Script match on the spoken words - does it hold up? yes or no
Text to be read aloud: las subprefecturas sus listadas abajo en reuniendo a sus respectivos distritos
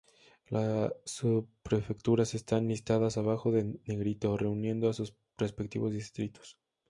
no